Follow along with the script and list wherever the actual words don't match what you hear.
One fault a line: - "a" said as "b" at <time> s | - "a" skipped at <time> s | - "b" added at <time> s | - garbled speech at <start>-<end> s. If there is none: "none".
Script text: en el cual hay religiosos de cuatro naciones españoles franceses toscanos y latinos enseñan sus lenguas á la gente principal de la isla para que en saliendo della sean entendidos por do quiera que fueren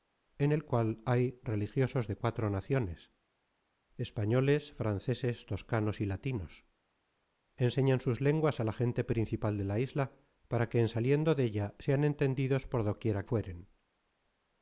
- "que" skipped at 13.2 s